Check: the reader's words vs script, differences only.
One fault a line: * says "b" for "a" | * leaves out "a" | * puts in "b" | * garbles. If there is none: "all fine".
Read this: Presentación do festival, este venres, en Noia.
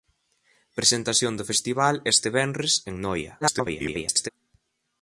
* garbles